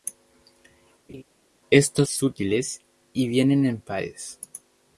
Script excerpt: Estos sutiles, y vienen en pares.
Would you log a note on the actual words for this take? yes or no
no